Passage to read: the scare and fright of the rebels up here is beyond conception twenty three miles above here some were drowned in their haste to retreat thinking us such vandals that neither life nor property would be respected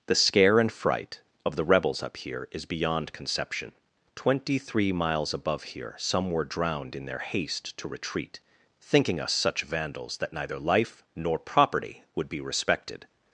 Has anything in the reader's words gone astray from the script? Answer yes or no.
no